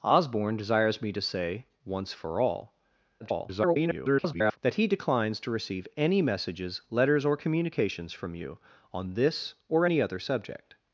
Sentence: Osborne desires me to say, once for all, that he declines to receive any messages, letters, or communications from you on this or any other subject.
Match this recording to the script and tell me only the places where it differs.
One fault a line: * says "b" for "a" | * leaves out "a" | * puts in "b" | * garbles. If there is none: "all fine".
* garbles